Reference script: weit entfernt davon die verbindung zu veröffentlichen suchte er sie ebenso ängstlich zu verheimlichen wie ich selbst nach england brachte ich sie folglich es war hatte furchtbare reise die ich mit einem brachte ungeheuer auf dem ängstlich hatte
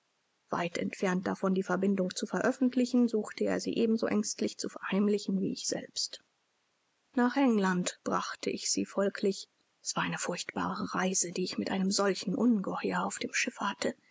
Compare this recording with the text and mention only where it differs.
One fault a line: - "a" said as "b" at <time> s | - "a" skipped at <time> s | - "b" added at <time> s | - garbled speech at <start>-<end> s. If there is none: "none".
- "hatte" said as "eine" at 10.0 s
- "brachte" said as "solchen" at 11.9 s
- "ängstlich" said as "schiffe" at 13.3 s